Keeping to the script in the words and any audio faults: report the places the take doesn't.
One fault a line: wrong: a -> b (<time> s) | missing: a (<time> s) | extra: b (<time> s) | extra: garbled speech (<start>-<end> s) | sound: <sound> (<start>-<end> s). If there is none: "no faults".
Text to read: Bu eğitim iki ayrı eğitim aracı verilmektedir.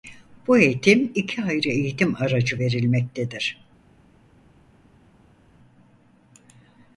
no faults